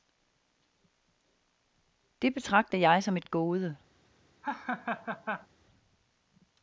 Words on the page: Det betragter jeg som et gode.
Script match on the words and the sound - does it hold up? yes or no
no